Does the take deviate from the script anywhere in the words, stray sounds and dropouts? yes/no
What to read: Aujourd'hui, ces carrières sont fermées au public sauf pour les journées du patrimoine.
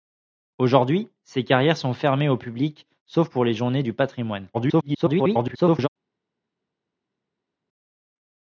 yes